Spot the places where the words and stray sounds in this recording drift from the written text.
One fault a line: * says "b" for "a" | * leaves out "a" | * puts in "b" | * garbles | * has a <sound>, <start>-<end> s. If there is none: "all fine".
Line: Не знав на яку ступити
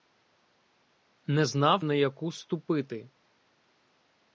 all fine